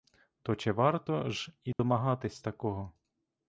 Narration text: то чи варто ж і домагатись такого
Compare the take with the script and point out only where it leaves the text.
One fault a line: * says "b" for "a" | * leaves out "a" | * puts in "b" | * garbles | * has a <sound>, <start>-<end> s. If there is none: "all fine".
* has a dropout, 1.7-1.8 s